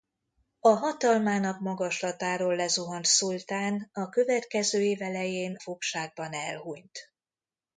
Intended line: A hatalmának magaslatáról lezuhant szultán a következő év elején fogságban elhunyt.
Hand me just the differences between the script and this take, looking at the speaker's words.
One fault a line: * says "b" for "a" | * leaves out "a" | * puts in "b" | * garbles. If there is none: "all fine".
all fine